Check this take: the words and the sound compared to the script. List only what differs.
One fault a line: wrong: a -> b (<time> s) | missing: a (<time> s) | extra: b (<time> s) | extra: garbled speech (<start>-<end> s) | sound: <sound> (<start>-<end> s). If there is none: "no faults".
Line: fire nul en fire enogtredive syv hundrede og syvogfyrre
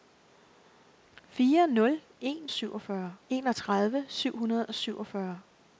wrong: fire -> syvogfyrre (2.5 s)